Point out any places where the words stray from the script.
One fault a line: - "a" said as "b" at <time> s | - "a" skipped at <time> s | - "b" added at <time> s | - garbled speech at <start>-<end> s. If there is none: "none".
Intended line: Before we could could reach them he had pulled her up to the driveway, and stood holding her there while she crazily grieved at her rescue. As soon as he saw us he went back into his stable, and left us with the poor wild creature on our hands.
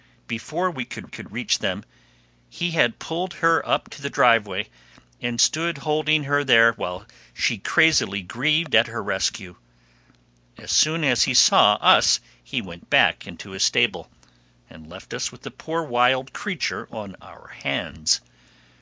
none